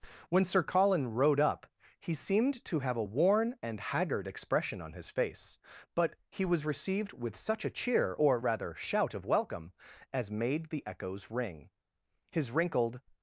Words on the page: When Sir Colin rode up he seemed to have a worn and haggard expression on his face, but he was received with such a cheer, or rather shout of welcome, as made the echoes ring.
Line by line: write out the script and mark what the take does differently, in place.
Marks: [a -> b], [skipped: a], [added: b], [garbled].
When Sir Colin rode up he seemed to have a worn and haggard expression on his face, but he was received with such a cheer, or rather shout of welcome, as made the echoes ring. [added: His wrinkled]